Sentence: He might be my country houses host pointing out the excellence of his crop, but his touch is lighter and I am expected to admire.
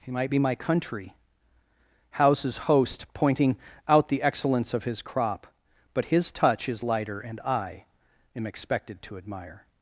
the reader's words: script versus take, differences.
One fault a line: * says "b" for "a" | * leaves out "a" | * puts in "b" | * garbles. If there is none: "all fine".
all fine